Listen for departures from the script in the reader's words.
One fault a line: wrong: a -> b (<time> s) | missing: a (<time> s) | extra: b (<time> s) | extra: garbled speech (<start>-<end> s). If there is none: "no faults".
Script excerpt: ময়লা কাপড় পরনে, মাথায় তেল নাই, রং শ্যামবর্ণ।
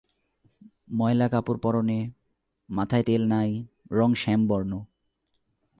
no faults